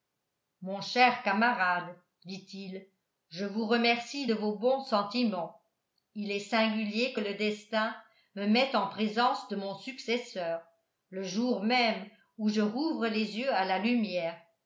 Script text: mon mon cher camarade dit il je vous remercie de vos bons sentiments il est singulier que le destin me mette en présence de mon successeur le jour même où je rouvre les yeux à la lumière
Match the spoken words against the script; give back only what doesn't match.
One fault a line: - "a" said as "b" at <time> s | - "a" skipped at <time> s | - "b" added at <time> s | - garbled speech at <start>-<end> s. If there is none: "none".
- "mon" skipped at 0.8 s